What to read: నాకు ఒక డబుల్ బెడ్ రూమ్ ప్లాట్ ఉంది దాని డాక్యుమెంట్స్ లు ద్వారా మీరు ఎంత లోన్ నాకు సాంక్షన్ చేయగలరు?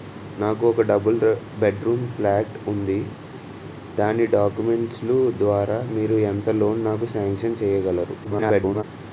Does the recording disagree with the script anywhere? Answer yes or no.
yes